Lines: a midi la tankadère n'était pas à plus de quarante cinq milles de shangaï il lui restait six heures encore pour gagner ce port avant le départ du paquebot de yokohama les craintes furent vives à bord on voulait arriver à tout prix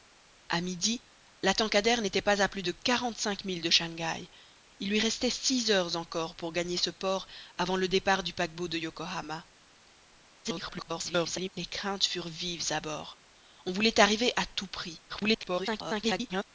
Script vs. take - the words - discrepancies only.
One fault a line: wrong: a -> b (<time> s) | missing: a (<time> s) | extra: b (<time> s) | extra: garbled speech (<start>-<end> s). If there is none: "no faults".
extra: garbled speech (10.4-11.5 s)
extra: garbled speech (15.1-16.4 s)